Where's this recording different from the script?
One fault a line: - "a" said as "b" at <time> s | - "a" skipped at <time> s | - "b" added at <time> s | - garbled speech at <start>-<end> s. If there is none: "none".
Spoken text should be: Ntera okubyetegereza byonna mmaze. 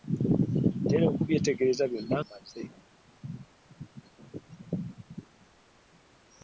none